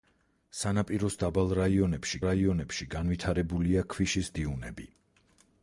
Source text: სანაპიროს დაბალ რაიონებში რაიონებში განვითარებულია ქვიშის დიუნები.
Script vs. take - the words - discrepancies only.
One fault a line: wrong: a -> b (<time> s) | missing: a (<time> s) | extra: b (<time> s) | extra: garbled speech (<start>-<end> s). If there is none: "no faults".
no faults